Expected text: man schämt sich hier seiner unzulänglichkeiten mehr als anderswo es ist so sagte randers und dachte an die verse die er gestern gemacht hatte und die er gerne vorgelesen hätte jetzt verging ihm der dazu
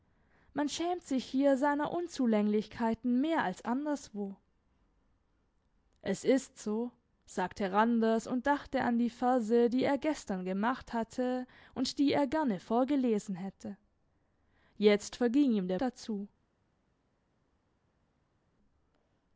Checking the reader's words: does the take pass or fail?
pass